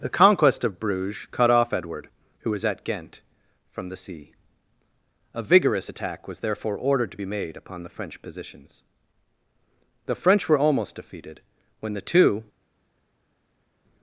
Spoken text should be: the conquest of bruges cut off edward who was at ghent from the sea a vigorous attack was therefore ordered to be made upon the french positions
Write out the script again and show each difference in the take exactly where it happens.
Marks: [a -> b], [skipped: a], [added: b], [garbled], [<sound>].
the conquest of bruges cut off edward who was at ghent from the sea a vigorous attack was therefore ordered to be made upon the french positions [added: the french were almost defeated when the two]